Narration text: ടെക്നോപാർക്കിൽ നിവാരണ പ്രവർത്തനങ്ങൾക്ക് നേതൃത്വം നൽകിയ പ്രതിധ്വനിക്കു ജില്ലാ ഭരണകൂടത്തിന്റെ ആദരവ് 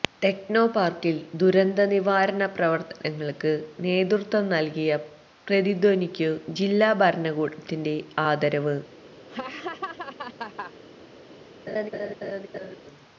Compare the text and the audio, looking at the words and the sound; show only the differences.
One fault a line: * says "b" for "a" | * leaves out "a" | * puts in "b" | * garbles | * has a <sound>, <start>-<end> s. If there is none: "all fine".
* puts in "ദുരന്ത"
* has a laugh, 9.3-10.7 s
* has a laugh, 11.7-12.8 s